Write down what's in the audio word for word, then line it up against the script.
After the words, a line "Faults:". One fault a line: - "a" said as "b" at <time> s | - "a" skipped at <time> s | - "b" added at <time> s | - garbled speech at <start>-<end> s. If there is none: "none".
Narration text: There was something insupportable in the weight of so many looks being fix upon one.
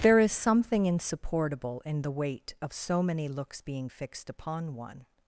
There is something insupportable in the weight of so many looks being fixed upon one.
Faults:
- "was" said as "is" at 0.2 s
- "fix" said as "fixed" at 3.8 s